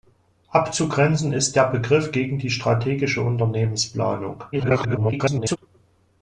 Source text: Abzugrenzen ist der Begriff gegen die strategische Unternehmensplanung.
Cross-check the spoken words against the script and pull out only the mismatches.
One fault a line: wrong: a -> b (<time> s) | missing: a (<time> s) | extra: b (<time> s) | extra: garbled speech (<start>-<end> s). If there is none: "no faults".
extra: garbled speech (4.5-5.6 s)